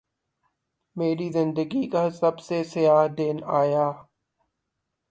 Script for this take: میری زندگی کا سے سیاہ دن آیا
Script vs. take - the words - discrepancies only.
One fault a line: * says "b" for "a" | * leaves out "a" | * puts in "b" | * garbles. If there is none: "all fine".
* puts in "سب"